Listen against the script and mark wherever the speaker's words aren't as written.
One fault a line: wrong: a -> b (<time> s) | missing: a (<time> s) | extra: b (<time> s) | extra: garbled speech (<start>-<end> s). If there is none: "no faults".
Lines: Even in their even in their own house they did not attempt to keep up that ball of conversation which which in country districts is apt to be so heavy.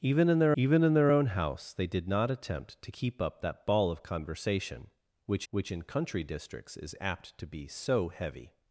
no faults